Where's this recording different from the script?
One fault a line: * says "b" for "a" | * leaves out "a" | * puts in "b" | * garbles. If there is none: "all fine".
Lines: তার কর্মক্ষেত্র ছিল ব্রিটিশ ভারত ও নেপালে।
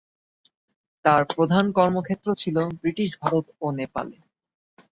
* puts in "প্রধান"